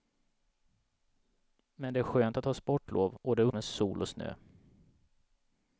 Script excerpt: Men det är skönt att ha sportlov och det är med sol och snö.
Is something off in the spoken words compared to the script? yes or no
no